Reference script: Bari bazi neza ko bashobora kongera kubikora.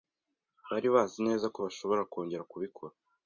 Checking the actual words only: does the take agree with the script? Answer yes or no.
yes